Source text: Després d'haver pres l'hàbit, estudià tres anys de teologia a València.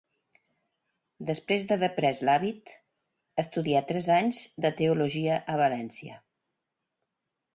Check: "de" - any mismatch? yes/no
no